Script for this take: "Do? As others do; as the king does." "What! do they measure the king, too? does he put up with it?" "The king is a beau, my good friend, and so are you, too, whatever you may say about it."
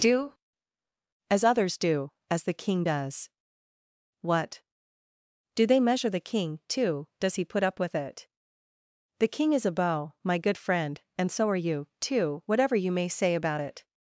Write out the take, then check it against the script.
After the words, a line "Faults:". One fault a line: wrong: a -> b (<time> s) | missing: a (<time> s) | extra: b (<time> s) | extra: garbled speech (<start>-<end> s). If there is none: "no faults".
"Do? As others do; as the king does." "What! do they measure the king, too? does he put up with it?" "The king is a beau, my good friend, and so are you, too, whatever you may say about it."
Faults:
no faults